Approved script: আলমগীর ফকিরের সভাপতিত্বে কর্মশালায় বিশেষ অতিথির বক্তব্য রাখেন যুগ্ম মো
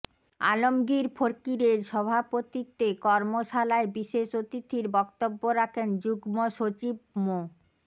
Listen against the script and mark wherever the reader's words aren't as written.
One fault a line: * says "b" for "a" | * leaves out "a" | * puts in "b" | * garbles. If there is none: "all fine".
* puts in "সচিব"